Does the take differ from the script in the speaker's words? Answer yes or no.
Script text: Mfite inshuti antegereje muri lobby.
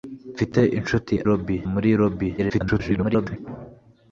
yes